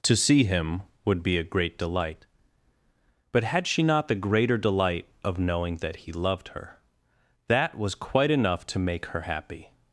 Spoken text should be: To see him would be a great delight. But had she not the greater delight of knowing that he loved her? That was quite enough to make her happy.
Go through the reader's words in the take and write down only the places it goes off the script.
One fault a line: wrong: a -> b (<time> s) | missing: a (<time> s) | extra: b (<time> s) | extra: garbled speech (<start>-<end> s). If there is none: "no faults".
no faults